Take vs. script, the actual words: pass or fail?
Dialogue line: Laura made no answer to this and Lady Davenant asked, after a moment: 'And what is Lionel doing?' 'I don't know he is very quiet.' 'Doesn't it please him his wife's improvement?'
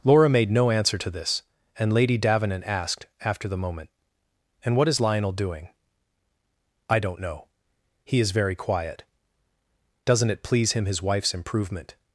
fail